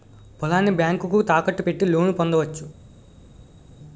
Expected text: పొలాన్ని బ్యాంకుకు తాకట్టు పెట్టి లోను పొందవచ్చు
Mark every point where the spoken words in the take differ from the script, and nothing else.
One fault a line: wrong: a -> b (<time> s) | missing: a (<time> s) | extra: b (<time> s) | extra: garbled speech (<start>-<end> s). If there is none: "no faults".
no faults